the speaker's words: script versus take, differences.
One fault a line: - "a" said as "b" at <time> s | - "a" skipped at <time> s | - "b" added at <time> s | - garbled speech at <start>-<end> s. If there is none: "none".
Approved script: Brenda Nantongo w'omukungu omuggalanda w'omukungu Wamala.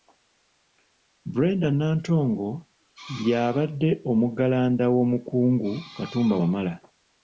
- "w'omukungu" said as "y'abadde" at 3.3 s
- "Katumba" added at 6.0 s